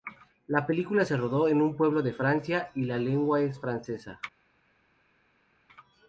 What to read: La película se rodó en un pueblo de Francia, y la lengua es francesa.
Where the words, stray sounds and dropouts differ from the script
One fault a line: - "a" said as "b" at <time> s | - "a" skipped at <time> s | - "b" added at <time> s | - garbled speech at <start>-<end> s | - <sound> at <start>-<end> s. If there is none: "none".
none